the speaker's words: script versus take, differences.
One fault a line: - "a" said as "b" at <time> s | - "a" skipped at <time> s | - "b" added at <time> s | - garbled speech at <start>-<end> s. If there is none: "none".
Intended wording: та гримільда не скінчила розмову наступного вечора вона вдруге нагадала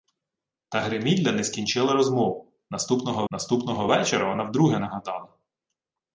- "наступного" added at 3.3 s